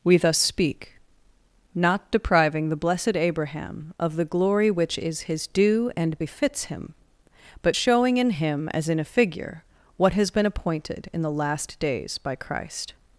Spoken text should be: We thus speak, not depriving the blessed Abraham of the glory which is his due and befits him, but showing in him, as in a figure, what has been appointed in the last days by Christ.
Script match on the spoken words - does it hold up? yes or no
yes